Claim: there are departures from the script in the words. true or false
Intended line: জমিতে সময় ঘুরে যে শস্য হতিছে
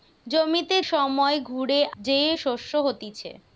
false